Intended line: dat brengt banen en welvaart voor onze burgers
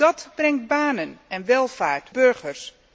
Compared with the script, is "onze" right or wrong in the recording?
wrong